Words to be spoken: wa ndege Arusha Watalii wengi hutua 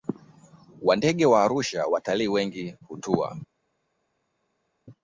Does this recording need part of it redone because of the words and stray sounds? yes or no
yes